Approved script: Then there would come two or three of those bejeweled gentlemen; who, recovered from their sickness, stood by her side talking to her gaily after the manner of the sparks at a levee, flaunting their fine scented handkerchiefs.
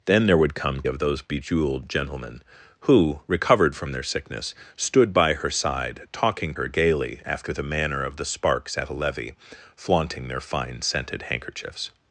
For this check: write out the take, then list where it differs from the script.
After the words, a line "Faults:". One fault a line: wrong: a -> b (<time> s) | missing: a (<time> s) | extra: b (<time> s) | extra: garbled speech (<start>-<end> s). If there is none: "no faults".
Then there would come of those bejeweled gentlemen; who, recovered from their sickness, stood by her side talking her gaily after the manner of the sparks at a levee, flaunting their fine scented handkerchiefs.
Faults:
missing: two or three (0.8 s)
missing: to (6.5 s)